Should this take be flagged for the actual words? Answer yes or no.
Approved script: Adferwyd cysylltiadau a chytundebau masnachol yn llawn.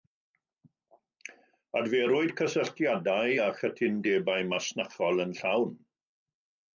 no